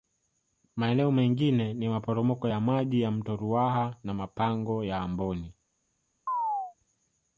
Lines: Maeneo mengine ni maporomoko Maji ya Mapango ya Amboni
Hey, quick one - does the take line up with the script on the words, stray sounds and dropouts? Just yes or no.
no